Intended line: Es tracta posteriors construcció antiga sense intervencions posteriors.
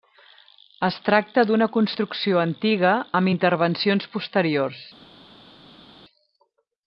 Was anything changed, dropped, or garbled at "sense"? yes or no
yes